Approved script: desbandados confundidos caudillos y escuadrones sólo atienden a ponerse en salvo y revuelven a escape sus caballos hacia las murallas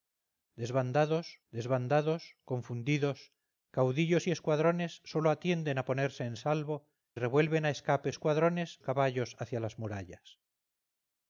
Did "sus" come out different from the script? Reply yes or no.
yes